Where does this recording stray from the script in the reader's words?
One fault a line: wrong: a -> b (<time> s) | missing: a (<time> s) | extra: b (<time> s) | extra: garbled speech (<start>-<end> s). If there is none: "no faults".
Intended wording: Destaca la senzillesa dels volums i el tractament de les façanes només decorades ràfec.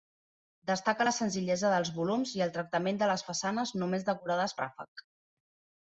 no faults